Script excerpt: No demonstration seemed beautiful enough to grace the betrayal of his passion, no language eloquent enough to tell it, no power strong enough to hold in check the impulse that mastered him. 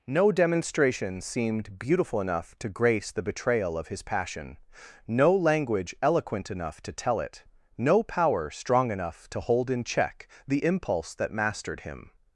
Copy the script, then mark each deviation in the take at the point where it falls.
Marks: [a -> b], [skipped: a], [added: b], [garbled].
No demonstration seemed beautiful enough to grace the betrayal of his passion, no language eloquent enough to tell it, no power strong enough to hold in check the impulse that mastered him.